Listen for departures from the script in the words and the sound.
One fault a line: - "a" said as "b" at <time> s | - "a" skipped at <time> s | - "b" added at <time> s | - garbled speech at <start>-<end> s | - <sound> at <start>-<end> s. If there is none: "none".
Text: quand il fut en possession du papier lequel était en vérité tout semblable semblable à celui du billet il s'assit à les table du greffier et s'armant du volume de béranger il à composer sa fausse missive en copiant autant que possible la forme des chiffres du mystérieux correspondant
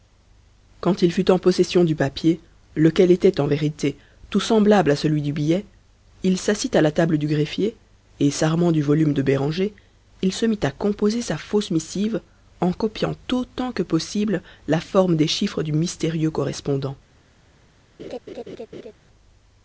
- "semblable" skipped at 4.9 s
- "les" said as "la" at 6.8 s
- "se mit" added at 10.3 s
- laugh at 18.0-18.9 s